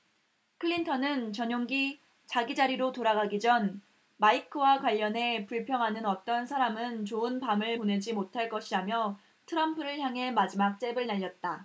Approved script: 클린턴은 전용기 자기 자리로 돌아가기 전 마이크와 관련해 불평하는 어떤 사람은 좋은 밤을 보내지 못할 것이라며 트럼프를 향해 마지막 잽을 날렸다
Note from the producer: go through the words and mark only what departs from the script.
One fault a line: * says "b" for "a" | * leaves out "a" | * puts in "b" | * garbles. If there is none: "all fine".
all fine